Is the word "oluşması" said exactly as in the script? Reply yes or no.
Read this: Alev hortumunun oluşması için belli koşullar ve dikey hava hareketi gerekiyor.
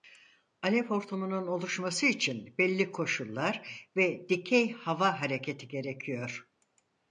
yes